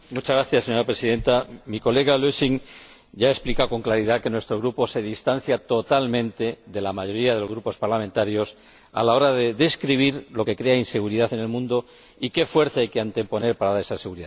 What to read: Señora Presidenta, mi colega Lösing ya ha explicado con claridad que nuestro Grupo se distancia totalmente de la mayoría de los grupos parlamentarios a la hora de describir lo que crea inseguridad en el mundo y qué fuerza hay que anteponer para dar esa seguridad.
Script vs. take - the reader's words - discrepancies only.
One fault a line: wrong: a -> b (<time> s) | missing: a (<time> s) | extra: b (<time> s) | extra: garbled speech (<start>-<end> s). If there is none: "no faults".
no faults